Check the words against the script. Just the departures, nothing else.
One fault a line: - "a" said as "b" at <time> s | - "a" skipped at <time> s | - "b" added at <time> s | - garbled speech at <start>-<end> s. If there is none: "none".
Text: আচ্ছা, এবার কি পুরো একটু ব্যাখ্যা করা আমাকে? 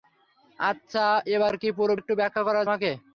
none